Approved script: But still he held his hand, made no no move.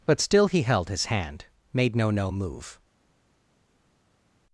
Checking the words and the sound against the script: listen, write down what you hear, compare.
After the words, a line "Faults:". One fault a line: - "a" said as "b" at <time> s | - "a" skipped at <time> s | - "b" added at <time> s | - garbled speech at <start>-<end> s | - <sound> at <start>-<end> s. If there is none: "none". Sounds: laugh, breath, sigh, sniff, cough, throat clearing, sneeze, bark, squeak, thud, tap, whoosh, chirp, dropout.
But still he held his hand, made no no move.
Faults:
none